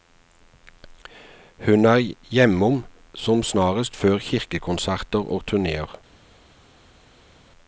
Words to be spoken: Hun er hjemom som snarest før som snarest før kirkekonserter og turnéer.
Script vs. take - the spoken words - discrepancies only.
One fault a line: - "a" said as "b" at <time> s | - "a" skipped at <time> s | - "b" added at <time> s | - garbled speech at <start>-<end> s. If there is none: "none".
- "som snarest før" skipped at 4.2 s